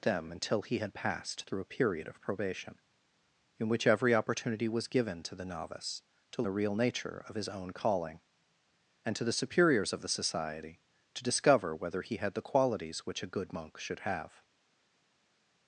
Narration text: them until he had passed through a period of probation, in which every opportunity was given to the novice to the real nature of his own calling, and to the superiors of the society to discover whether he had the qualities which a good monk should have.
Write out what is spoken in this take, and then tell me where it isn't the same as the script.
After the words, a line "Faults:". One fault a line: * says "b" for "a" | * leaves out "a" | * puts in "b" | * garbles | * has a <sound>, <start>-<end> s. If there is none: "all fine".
them until he had passed through a period of probation, in which every opportunity was given to the novice to the real nature of his own calling, and to the superiors of the society to discover whether he had the qualities which a good monk should have.
Faults:
all fine